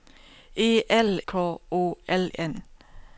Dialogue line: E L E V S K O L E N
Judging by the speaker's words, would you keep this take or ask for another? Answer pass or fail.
fail